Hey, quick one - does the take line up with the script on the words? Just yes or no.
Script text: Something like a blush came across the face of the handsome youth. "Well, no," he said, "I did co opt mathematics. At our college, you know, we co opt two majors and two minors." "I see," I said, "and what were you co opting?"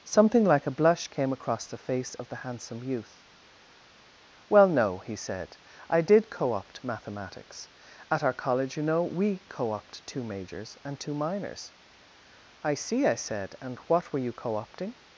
yes